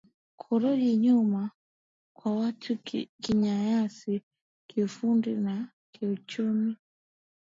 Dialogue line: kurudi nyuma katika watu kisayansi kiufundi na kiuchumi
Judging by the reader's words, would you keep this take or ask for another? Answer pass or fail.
fail